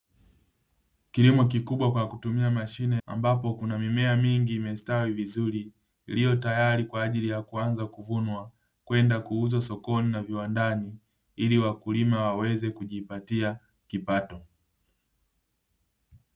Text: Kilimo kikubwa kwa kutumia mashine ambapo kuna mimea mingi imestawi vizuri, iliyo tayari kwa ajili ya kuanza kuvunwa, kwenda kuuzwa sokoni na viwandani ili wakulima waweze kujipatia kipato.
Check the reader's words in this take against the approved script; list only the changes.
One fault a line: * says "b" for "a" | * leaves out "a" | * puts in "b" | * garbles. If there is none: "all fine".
all fine